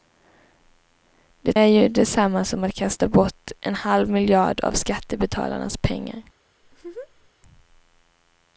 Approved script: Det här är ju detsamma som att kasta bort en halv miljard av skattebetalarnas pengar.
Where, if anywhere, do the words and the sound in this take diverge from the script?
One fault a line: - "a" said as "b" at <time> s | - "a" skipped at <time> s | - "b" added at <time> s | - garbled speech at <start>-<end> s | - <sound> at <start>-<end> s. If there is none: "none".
- "här" skipped at 1.6 s
- laugh at 6.6-7.3 s